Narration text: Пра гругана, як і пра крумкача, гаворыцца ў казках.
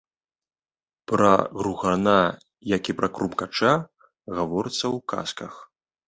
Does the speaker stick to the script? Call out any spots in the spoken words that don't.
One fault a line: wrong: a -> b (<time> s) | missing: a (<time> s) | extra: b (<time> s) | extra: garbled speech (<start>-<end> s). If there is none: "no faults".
no faults